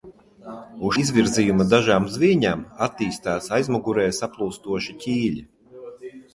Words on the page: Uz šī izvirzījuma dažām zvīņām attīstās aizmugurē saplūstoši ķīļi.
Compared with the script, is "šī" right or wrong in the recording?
wrong